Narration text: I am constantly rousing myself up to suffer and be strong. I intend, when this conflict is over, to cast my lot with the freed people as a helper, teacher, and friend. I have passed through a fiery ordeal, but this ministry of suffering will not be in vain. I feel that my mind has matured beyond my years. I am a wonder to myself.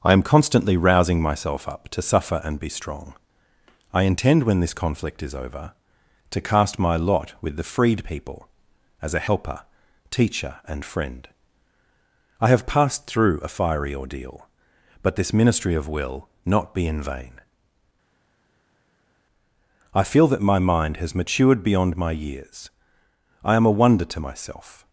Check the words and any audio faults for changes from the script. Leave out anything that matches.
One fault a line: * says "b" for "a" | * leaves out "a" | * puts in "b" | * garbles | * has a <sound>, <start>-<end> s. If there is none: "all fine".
* leaves out "suffering"